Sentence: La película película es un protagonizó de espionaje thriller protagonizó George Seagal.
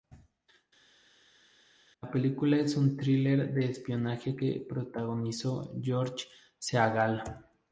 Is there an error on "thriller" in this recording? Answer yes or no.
yes